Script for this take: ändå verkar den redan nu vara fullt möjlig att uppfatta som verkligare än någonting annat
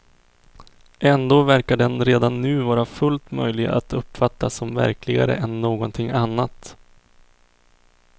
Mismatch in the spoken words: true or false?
false